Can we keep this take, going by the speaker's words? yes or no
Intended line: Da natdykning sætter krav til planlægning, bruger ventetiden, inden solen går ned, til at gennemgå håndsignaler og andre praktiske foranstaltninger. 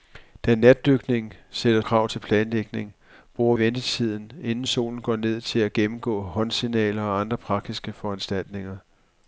yes